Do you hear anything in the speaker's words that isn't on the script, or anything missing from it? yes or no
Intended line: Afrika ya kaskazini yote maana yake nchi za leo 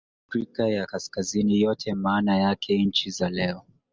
no